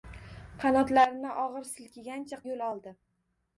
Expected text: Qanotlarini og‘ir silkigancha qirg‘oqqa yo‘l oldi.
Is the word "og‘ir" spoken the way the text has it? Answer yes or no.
yes